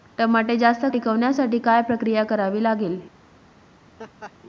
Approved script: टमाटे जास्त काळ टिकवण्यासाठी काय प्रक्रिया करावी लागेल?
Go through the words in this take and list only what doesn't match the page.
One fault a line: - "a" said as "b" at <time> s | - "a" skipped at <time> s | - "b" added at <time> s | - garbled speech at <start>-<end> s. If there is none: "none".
- "काळ" skipped at 0.8 s